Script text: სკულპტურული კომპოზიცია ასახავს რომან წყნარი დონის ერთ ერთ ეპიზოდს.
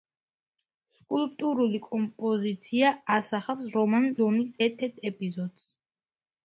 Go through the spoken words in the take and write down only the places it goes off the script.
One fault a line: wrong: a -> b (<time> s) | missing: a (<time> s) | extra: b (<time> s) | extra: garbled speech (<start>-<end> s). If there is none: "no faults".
missing: წყნარი (4.1 s)